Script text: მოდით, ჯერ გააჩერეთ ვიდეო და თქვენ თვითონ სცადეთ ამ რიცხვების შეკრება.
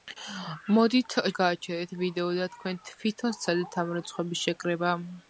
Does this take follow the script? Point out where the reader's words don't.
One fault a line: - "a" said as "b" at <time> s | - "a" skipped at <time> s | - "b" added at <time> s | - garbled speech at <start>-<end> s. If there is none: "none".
- "ჯერ" skipped at 1.2 s